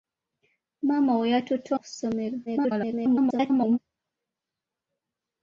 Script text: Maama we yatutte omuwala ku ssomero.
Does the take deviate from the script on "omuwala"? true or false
true